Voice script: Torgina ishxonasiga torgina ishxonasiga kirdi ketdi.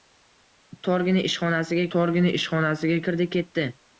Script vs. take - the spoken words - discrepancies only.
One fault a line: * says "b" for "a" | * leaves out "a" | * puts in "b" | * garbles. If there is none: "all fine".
all fine